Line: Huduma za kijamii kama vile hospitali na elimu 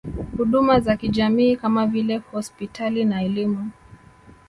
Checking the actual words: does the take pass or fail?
pass